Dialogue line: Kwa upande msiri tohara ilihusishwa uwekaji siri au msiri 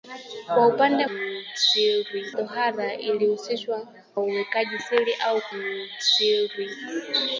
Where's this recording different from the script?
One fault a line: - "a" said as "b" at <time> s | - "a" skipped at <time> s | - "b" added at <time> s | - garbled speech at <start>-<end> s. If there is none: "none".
none